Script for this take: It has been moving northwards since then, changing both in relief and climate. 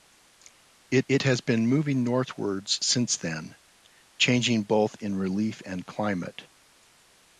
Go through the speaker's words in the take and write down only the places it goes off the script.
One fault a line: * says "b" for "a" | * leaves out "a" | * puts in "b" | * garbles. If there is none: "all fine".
* puts in "it"